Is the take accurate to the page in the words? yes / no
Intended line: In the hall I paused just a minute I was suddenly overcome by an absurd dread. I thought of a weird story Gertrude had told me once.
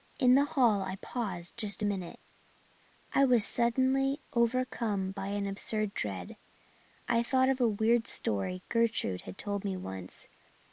yes